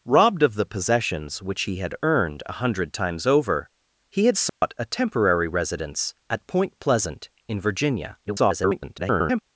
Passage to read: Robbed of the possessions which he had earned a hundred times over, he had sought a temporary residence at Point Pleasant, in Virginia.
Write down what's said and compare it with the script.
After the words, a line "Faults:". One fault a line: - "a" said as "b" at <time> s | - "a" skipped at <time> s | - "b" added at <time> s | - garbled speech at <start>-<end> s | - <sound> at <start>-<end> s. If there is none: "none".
Robbed of the possessions which he had earned a hundred times over, he had sought a temporary residence at Point Pleasant, in Virginia. [garbled]
Faults:
- dropout at 4.5-4.6 s
- garbled speech at 8.2-9.4 s